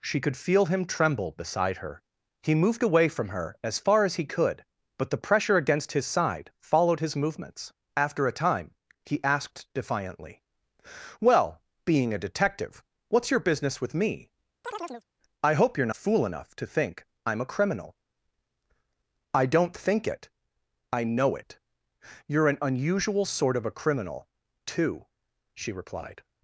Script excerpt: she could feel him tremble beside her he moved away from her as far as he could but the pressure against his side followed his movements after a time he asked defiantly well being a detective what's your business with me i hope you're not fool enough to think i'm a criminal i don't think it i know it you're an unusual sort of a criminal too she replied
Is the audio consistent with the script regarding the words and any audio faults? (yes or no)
no